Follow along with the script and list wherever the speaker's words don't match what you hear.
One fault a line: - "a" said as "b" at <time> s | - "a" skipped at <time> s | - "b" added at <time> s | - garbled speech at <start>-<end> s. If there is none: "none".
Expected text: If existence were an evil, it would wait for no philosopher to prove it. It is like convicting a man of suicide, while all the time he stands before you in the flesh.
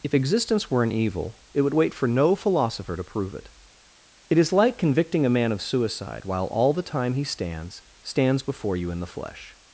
- "stands" added at 8.0 s